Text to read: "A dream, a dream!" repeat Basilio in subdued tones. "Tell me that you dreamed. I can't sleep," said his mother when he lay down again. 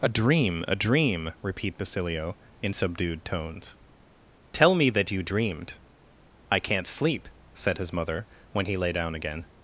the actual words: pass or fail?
pass